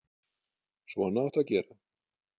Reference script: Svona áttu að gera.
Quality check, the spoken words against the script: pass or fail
pass